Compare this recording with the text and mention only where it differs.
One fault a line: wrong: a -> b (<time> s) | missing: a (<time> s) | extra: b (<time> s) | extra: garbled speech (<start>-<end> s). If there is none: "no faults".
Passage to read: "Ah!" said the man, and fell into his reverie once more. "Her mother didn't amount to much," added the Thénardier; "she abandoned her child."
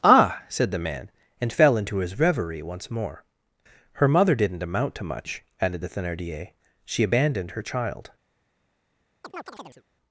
no faults